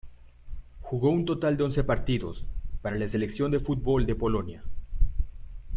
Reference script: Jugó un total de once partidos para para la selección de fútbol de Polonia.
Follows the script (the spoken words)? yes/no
no